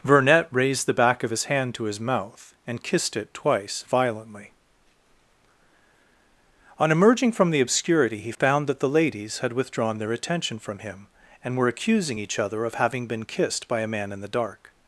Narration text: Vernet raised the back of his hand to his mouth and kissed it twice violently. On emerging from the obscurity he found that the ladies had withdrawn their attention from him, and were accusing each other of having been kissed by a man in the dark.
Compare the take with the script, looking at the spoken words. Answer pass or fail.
pass